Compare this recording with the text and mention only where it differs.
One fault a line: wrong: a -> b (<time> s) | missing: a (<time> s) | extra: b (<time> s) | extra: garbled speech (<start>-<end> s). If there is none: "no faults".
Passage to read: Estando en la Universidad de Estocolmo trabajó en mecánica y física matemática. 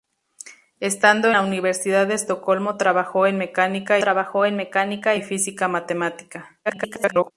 missing: en (1.3 s)
extra: trabajó en mecánica (4.0 s)
extra: garbled speech (6.7-7.3 s)